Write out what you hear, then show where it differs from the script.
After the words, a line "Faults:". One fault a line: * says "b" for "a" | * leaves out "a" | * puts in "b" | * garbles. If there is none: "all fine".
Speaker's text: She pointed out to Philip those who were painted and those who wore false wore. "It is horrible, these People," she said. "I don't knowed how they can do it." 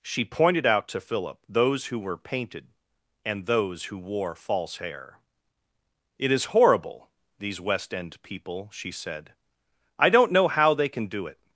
She pointed out to Philip those who were painted and those who wore false hair. "It is horrible, these West end people," she said. "I don't know how they can do it."
Faults:
* says "hair" for "wore"
* puts in "West end"
* says "know" for "knowed"